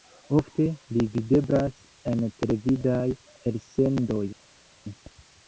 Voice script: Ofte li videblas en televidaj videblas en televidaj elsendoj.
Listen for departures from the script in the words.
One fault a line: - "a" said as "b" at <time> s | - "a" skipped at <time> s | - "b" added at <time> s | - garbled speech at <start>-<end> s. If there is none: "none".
- "videblas en televidaj" skipped at 3.0 s